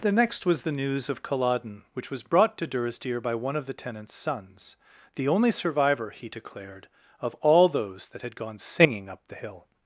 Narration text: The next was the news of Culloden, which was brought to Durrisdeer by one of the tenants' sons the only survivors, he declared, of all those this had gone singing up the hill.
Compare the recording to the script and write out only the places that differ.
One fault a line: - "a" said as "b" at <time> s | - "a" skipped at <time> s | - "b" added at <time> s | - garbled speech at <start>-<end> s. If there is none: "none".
- "survivors" said as "survivor" at 5.5 s
- "this" said as "that" at 8.1 s